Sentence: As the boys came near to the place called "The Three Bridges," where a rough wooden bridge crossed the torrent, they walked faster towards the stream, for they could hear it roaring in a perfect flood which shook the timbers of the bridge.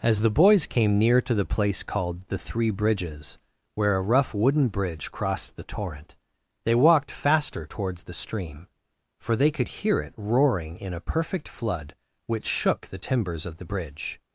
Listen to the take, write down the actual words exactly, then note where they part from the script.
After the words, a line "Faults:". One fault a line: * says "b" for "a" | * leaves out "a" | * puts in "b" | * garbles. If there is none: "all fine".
As the boys came near to the place called "The Three Bridges," where a rough wooden bridge crossed the torrent, they walked faster towards the stream, for they could hear it roaring in a perfect flood which shook the timbers of the bridge.
Faults:
all fine